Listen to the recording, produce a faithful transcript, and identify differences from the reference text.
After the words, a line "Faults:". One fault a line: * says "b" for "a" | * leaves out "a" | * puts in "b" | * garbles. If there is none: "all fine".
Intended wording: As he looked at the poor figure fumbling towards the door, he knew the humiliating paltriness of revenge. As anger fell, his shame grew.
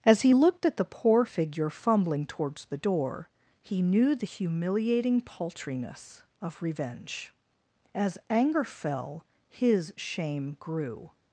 As he looked at the poor figure fumbling towards the door, he knew the humiliating paltriness of revenge. As anger fell, his shame grew.
Faults:
all fine